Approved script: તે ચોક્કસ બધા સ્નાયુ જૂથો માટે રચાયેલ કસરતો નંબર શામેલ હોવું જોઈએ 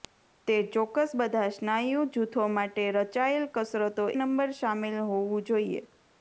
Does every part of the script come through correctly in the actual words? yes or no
yes